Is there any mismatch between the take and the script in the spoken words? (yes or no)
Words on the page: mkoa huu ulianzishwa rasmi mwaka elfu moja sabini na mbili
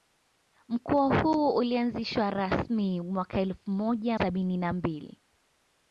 no